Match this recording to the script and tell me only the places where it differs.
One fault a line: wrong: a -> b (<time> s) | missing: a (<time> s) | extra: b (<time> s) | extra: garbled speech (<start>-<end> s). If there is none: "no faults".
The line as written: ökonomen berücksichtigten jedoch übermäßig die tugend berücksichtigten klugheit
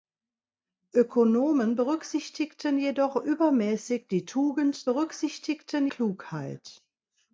no faults